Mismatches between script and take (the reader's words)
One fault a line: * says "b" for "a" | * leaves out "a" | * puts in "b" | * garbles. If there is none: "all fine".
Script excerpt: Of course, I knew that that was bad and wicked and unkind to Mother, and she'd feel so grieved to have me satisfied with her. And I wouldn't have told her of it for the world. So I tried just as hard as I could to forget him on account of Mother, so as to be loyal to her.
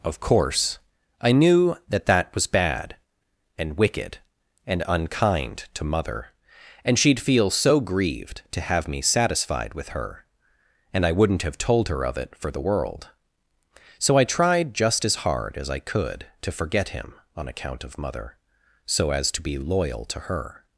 all fine